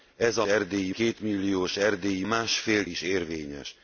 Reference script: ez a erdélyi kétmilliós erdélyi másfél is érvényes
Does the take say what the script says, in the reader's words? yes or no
yes